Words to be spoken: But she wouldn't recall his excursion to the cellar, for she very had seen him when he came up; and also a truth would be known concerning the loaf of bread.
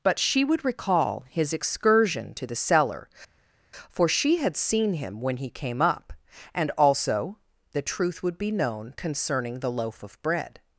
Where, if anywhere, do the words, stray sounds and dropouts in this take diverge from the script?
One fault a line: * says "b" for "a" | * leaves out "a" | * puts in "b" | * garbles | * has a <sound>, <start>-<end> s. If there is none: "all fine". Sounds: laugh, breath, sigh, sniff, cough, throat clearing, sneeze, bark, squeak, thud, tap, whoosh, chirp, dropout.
* says "would" for "wouldn't"
* leaves out "very"
* says "the" for "a"